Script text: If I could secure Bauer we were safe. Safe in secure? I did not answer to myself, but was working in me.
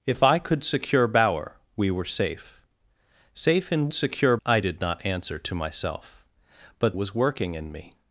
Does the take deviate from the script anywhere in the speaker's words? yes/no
no